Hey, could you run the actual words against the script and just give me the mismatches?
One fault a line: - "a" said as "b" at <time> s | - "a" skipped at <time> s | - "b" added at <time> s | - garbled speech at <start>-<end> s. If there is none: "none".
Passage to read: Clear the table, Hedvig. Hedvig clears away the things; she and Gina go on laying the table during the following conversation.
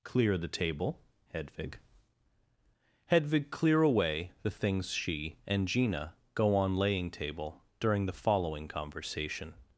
- "clears" said as "clear" at 3.5 s
- "the" skipped at 7.1 s